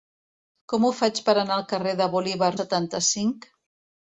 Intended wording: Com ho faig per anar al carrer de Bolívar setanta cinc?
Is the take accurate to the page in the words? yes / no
yes